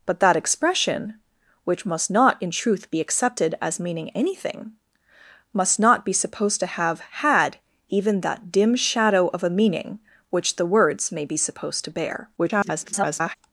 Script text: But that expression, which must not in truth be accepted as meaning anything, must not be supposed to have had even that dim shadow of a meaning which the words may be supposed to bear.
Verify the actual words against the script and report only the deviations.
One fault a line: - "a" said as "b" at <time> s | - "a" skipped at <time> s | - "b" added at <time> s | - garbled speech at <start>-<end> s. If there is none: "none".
- garbled speech at 12.4-13.4 s